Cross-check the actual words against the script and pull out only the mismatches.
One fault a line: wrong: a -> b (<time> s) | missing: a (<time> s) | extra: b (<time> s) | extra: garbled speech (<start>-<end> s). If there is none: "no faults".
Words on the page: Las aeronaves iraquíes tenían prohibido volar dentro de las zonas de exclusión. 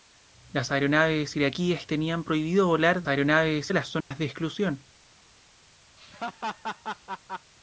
wrong: dentro -> aeronaves (3.1 s)